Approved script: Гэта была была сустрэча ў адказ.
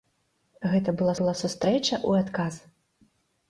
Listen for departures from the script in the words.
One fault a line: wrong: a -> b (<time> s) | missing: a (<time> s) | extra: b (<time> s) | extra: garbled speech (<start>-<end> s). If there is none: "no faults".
no faults